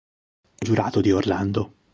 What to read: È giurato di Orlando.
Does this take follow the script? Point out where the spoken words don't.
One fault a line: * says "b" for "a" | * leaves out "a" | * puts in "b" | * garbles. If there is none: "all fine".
all fine